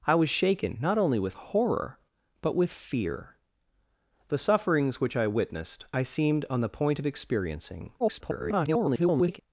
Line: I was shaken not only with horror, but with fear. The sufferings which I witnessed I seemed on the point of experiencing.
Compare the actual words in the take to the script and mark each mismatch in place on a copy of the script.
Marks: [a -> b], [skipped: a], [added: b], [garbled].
I was shaken not only with horror, but with fear. The sufferings which I witnessed I seemed on the point of experiencing. [garbled]